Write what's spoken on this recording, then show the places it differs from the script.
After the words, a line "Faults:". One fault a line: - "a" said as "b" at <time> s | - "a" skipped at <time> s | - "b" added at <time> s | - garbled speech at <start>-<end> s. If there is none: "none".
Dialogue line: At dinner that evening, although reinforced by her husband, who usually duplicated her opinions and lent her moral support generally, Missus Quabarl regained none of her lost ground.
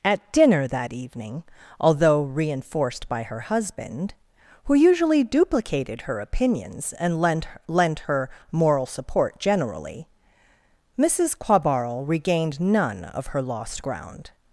At dinner that evening, although reinforced by her husband, who usually duplicated her opinions and lent lent her moral support generally, Missus Quabarl regained none of her lost ground.
Faults:
- "lent" added at 7.7 s